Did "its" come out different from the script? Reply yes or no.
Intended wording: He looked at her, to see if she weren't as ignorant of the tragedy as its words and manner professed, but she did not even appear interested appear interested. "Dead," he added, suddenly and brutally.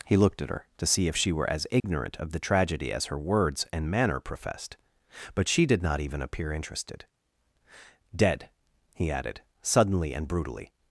yes